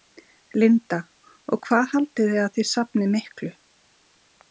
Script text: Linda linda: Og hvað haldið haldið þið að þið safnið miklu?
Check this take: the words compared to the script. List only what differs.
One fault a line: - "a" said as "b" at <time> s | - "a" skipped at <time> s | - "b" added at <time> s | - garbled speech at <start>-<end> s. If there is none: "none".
- "linda" skipped at 1.0 s
- "haldið" skipped at 2.3 s